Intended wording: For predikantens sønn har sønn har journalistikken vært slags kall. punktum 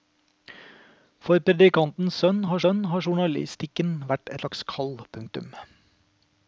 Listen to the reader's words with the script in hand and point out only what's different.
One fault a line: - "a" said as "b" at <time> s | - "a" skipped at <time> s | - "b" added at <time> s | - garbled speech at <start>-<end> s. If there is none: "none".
none